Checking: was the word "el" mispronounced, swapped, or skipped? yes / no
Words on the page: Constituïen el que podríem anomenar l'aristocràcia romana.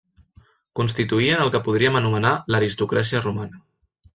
no